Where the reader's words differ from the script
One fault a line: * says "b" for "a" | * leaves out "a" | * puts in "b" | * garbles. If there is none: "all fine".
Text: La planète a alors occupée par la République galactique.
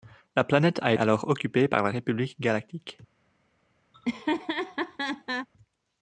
all fine